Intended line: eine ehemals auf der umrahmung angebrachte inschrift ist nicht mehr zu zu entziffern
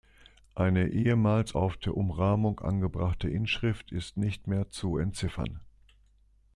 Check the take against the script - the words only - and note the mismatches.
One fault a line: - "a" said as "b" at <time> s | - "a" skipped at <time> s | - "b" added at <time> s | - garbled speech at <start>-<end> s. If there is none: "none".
- "zu" skipped at 5.0 s